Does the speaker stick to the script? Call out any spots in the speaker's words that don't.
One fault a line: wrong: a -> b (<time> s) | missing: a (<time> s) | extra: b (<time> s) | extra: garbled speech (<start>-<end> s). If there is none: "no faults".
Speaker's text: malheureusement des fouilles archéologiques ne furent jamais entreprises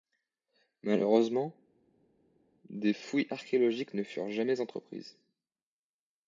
no faults